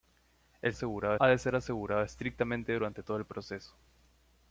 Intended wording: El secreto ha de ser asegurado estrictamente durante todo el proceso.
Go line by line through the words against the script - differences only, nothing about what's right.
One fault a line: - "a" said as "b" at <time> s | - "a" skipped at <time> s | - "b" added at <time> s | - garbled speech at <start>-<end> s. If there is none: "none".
- "secreto" said as "asegurado" at 0.7 s